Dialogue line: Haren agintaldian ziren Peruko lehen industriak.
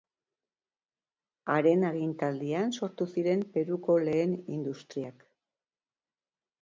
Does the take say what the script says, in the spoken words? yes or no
no